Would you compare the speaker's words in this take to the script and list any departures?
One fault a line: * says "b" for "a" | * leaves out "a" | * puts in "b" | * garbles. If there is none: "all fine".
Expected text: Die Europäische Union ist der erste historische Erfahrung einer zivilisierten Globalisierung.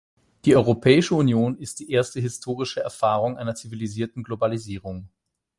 * says "die" for "der"